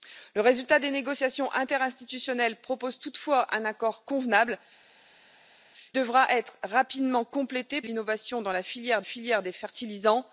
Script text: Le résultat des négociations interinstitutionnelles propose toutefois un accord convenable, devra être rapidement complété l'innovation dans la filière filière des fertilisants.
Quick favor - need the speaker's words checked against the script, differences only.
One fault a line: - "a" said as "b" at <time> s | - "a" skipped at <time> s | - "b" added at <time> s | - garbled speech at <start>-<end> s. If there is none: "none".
none